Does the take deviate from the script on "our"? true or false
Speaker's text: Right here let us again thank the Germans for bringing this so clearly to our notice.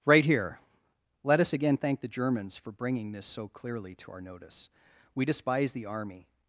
false